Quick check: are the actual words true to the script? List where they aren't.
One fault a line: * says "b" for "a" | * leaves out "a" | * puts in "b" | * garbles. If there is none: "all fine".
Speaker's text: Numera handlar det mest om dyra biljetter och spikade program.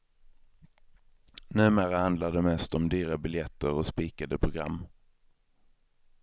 all fine